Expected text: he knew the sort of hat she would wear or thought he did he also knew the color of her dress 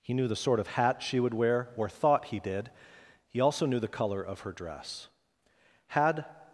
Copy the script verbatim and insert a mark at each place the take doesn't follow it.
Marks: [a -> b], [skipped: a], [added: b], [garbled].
he knew the sort of hat she would wear or thought he did he also knew the color of her dress [added: had]